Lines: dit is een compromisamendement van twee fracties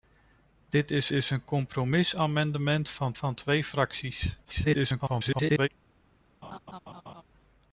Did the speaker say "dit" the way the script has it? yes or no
yes